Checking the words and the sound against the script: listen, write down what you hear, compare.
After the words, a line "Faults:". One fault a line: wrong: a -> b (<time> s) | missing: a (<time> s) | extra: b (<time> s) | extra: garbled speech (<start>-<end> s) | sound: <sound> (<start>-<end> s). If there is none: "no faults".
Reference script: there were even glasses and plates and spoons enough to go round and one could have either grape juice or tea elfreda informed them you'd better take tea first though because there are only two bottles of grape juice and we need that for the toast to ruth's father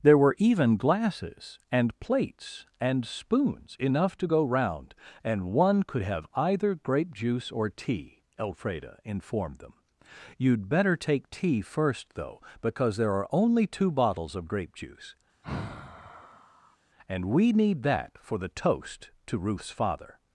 there were even glasses and plates and spoons enough to go round and one could have either grape juice or tea elfreda informed them you'd better take tea first though because there are only two bottles of grape juice and we need that for the toast to ruth's father
Faults:
sound: sigh (15.4-16.8 s)